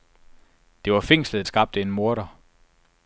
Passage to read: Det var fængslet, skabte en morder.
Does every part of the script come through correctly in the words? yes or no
yes